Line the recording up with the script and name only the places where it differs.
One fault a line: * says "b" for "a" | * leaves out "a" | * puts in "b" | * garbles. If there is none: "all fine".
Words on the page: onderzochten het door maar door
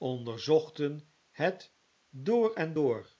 * says "en" for "maar"